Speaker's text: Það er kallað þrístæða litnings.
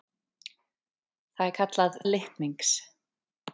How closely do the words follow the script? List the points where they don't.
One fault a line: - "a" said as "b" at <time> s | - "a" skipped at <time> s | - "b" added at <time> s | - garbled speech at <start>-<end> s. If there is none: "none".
- "þrístæða" skipped at 2.0 s